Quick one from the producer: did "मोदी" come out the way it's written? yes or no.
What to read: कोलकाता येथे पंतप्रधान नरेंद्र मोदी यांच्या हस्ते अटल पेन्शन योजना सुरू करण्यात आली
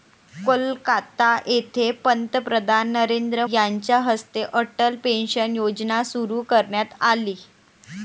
no